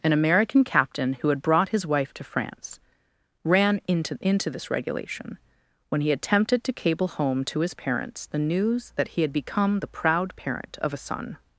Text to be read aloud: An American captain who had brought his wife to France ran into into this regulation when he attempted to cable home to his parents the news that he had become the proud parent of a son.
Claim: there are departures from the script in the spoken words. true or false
false